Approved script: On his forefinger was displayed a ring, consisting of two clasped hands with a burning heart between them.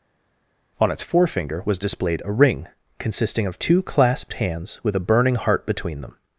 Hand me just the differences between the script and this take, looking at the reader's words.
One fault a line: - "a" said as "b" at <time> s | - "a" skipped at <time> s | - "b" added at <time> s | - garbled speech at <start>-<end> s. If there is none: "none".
- "his" said as "its" at 0.9 s